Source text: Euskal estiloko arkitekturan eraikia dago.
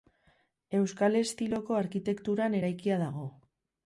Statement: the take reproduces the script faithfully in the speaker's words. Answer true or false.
true